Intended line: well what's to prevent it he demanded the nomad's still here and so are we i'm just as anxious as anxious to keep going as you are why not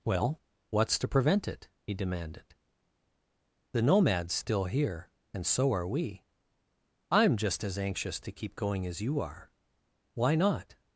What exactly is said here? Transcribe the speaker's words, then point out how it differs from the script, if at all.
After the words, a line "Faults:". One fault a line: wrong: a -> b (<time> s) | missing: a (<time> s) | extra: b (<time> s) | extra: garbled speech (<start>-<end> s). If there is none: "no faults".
well what's to prevent it he demanded the nomad's still here and so are we i'm just as anxious to keep going as you are why not
Faults:
missing: as anxious (8.2 s)